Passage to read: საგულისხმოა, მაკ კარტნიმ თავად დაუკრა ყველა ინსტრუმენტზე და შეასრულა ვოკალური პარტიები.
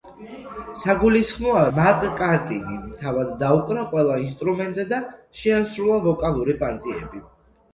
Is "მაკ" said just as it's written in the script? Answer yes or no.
yes